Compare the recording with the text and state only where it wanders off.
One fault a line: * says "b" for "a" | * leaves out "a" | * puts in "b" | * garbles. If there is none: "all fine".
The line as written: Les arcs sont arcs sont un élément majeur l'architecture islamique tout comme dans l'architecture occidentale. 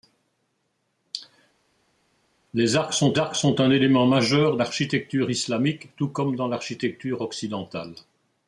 all fine